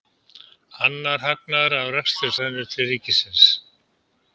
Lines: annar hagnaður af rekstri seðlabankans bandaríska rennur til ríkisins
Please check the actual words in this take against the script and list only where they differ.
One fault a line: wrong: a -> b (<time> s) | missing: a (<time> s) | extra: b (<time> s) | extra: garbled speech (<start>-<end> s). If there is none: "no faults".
missing: seðlabankans bandaríska (2.3 s)